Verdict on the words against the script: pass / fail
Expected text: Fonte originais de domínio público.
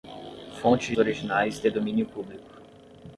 pass